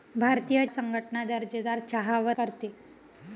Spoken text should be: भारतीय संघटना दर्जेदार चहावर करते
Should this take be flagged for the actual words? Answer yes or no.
no